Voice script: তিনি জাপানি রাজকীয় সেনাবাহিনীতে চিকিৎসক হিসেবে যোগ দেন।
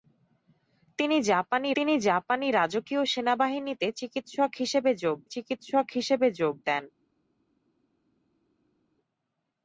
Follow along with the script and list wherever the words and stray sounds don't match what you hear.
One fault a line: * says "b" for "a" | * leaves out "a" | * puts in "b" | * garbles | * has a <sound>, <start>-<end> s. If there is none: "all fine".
* puts in "তিনি জাপানি"
* puts in "চিকিৎসক হিসেবে যোগ"